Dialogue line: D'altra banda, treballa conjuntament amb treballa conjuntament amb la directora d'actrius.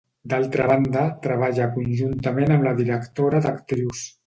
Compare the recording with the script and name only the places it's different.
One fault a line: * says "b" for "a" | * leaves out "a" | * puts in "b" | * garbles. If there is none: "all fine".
* leaves out "treballa conjuntament amb"